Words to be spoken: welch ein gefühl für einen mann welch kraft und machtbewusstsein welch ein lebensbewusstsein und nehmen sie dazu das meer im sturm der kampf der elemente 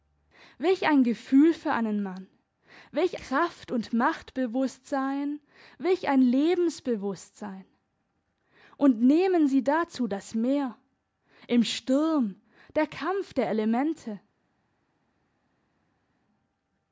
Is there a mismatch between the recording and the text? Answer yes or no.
no